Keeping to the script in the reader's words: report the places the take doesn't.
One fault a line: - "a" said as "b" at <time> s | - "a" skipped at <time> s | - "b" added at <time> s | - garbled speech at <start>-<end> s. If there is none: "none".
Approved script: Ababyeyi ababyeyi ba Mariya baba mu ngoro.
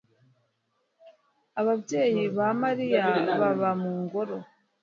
- "ababyeyi" skipped at 2.2 s